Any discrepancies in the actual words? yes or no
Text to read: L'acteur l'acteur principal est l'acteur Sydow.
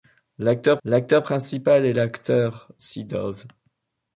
no